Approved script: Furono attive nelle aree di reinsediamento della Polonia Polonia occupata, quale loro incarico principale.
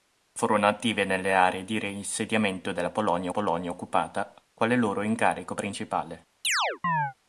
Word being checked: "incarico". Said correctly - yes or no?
yes